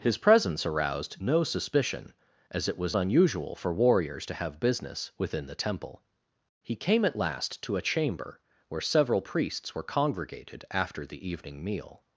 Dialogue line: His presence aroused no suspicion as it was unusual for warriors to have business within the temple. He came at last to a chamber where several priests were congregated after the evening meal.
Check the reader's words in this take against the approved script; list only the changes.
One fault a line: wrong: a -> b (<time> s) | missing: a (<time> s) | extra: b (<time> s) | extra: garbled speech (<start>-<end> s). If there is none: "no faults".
no faults